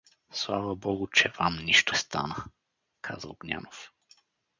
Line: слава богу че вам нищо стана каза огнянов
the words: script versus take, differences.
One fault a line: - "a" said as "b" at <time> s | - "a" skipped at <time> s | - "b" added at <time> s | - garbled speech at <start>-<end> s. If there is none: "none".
none